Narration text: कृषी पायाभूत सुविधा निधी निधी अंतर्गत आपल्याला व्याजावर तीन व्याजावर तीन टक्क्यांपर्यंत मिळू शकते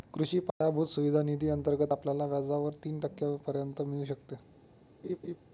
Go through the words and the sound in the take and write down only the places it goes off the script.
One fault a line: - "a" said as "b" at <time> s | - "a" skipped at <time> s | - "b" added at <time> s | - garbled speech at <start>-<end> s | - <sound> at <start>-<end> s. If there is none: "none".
- dropout at 0.5-0.6 s
- "निधी" skipped at 1.5 s
- "व्याजावर तीन" skipped at 3.0 s
- laugh at 5.0-5.4 s